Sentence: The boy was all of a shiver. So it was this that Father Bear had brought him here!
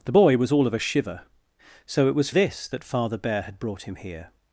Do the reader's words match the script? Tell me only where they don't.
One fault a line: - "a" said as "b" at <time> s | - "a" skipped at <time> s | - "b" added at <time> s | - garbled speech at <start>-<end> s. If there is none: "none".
none